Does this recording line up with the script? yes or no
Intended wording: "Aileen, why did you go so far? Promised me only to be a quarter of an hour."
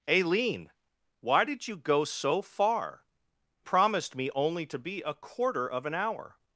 yes